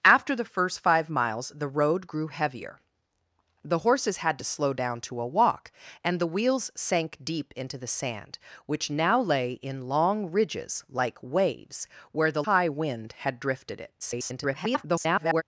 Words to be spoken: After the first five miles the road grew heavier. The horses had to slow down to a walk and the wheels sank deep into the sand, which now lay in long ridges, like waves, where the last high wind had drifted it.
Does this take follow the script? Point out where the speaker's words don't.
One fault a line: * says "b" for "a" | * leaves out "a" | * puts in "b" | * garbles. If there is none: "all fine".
* leaves out "last"
* garbles